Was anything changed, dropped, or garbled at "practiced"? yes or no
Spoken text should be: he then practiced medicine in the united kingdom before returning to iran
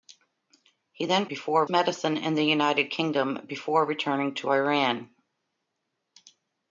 yes